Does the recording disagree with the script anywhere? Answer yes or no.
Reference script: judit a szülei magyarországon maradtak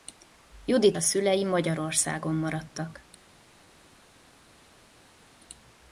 no